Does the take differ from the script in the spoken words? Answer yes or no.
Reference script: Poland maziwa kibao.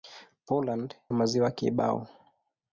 no